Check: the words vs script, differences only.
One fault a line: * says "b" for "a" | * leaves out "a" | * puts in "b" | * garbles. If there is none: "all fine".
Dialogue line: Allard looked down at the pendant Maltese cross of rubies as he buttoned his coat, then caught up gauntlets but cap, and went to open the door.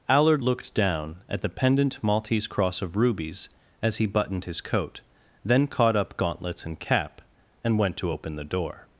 * says "and" for "but"